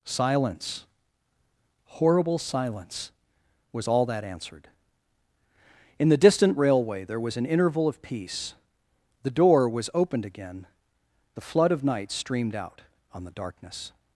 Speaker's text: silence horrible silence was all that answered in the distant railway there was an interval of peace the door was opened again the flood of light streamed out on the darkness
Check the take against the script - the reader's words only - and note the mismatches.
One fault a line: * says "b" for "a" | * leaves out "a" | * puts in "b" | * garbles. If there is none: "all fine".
* says "night" for "light"